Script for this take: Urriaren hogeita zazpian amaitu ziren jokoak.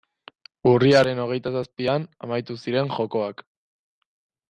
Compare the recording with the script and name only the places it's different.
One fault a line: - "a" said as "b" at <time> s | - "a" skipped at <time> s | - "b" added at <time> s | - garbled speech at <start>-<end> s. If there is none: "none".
none